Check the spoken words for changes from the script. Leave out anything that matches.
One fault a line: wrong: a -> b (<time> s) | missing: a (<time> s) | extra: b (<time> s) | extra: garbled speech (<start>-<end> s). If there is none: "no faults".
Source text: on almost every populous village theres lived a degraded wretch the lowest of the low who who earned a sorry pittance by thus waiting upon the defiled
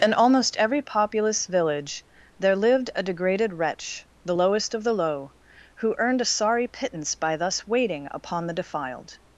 wrong: on -> in (0.0 s)
wrong: theres -> there (2.4 s)
missing: who (6.0 s)